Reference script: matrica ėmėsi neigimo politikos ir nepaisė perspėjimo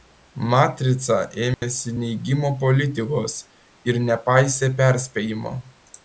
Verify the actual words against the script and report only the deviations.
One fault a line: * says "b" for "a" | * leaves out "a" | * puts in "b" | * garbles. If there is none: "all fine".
all fine